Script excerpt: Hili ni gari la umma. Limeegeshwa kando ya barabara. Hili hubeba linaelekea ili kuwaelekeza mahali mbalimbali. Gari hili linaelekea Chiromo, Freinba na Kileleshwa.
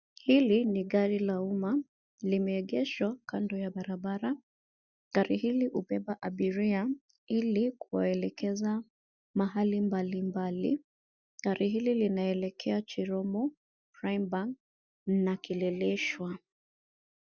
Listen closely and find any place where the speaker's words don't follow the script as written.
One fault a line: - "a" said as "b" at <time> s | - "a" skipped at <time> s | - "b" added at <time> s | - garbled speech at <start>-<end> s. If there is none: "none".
- "Gari" added at 5.1 s
- "linaelekea" said as "abiria" at 6.2 s